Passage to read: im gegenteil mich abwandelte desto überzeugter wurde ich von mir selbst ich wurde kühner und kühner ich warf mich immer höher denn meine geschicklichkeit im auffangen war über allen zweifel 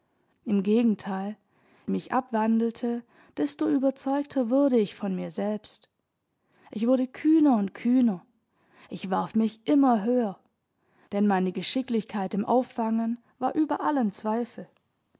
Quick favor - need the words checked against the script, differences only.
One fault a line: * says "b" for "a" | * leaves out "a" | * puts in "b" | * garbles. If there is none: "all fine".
all fine